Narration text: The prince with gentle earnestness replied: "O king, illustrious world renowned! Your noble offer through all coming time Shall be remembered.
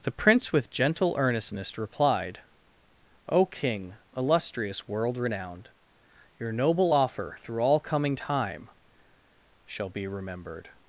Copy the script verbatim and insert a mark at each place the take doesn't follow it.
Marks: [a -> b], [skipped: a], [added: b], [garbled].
The prince with gentle earnestness replied: "O king, illustrious world renowned! Your noble offer through all coming time Shall be remembered.